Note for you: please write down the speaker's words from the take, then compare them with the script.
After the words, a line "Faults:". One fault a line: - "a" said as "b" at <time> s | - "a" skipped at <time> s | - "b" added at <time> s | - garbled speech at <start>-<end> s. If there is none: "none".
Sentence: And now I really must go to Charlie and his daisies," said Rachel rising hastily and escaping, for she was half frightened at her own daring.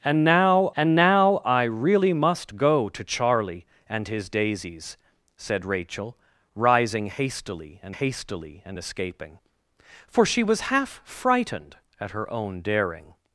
And now and now I really must go to Charlie and his daisies," said Rachel rising hastily and hastily and escaping, for she was half frightened at her own daring.
Faults:
- "and now" added at 0.8 s
- "hastily and" added at 7.9 s